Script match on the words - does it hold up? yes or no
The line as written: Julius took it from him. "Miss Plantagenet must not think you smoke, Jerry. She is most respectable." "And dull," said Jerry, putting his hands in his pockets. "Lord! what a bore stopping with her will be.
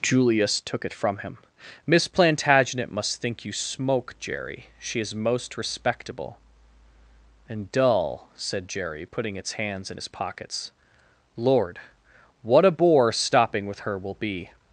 no